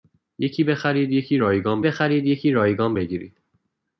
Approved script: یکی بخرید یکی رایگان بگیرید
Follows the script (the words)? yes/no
no